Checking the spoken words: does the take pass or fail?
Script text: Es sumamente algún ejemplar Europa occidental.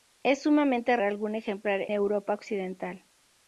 pass